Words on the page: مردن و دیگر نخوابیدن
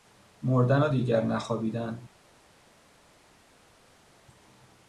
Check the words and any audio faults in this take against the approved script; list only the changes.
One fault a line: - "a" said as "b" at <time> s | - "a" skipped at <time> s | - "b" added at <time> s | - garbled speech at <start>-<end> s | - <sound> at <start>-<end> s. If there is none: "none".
none